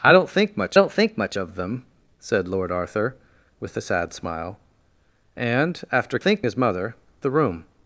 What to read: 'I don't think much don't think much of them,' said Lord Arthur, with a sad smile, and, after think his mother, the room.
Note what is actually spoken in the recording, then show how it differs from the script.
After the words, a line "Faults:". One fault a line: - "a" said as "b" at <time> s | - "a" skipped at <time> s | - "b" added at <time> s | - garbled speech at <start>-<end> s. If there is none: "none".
'I don't think much don't think much of them,' said Lord Arthur, with a sad smile, and, after think his mother, the room.
Faults:
none